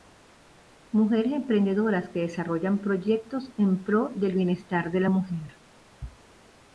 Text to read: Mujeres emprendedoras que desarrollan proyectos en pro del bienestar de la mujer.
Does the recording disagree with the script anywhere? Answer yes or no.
no